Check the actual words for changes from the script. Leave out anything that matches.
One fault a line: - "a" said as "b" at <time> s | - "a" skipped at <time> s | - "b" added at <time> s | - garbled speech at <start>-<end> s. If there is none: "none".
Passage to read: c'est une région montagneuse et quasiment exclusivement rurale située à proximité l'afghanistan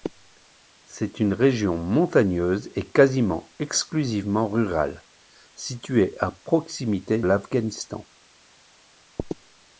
none